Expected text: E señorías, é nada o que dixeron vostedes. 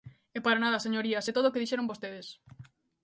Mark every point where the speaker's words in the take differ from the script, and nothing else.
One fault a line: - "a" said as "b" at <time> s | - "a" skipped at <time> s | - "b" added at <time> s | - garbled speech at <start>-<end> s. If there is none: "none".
- "para nada" added at 0.5 s
- "nada" said as "todo" at 1.4 s